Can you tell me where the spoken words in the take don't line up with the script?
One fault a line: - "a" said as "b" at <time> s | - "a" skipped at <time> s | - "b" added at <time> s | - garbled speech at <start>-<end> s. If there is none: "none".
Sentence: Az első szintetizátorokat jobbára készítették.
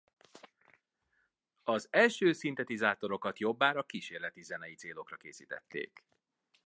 - "kísérleti zenei célokra" added at 3.8 s